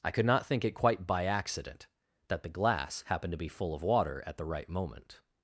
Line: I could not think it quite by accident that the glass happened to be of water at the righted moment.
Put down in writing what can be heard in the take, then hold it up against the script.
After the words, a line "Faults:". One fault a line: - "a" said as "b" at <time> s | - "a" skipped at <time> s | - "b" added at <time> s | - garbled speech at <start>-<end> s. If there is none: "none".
I could not think it quite by accident that the glass happened to be full of water at the right moment.
Faults:
- "full" added at 3.5 s
- "righted" said as "right" at 4.5 s